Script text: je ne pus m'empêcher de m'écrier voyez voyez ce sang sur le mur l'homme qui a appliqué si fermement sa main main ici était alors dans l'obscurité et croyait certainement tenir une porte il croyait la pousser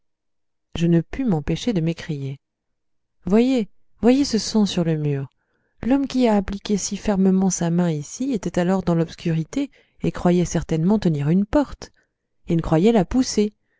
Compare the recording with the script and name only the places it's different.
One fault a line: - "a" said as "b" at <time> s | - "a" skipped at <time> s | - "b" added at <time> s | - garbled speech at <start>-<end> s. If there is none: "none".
- "main" skipped at 7.9 s